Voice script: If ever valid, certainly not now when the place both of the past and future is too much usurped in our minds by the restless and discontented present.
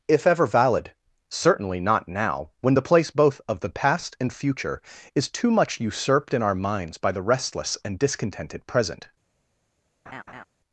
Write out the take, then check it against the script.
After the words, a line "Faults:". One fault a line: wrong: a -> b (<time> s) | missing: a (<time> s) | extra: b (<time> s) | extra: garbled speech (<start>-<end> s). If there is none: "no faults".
If ever valid, certainly not now when the place both of the past and future is too much usurped in our minds by the restless and discontented present.
Faults:
no faults